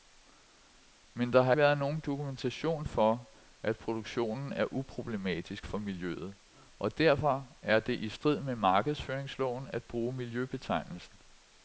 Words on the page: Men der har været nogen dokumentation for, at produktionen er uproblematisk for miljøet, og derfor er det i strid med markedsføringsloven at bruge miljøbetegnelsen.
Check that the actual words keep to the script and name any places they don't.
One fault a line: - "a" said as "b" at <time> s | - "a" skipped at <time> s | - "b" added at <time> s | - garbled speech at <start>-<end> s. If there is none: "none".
none